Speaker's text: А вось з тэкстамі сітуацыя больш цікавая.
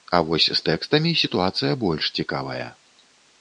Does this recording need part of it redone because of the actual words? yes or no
no